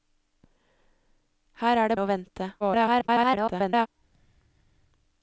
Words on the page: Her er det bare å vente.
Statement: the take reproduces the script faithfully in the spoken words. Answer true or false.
false